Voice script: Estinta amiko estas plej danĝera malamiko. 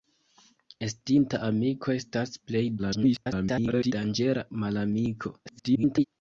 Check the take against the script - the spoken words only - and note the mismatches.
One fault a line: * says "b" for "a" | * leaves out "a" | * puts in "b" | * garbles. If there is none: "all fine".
* garbles
* garbles